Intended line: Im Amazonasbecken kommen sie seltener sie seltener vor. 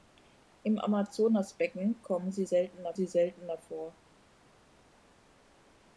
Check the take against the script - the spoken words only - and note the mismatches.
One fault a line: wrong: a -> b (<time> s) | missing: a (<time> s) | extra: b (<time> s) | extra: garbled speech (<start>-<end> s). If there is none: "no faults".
no faults